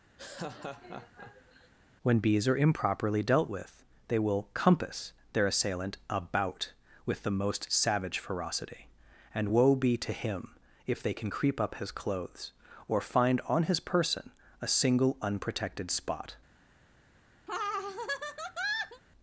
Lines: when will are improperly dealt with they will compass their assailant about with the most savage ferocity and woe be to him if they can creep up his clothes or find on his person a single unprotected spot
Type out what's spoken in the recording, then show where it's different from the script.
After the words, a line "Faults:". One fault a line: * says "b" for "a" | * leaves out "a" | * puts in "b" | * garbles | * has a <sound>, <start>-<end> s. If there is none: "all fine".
when bees are improperly dealt with they will compass their assailant about with the most savage ferocity and woe be to him if they can creep up his clothes or find on his person a single unprotected spot
Faults:
* has a laugh, 0.2-1.7 s
* says "bees" for "will"
* has a laugh, 17.5-19.0 s